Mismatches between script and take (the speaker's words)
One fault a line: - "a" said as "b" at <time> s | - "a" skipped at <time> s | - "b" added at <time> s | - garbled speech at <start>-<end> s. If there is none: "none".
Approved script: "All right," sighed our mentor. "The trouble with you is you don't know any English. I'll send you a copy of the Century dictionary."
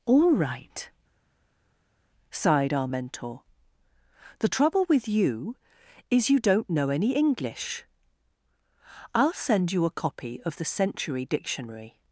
none